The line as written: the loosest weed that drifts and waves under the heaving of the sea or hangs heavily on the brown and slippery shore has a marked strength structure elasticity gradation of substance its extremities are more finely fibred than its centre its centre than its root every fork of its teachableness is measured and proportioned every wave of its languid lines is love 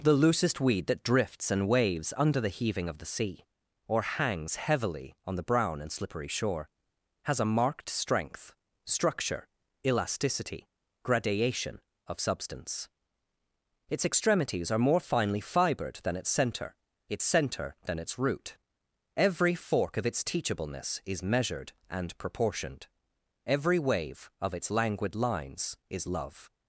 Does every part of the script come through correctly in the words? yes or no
yes